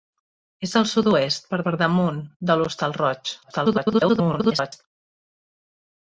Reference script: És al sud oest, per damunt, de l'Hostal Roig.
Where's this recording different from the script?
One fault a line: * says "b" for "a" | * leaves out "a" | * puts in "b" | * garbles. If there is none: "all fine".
* puts in "per"
* garbles